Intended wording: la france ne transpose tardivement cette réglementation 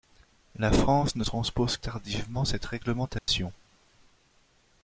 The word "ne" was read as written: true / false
true